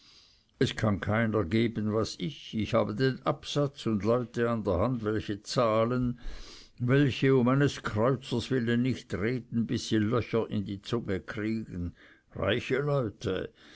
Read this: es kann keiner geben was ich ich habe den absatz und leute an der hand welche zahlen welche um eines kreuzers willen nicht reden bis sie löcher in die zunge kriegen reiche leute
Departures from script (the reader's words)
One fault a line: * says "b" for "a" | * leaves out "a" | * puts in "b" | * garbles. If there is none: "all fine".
all fine